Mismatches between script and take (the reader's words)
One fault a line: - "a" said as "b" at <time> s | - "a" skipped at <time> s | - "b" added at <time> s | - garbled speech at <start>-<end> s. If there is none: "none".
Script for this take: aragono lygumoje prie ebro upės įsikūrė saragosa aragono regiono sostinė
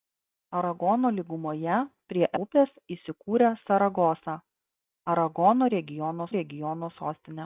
- "ebro" skipped at 2.3 s
- "regiono" added at 6.4 s